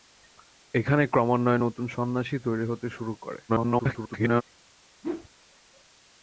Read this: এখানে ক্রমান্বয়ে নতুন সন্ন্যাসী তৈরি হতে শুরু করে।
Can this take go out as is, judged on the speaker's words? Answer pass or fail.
fail